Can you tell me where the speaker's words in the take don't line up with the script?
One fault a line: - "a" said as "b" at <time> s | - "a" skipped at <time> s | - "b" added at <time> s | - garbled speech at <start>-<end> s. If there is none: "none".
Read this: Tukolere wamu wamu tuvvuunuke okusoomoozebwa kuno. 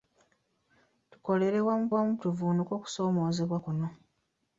none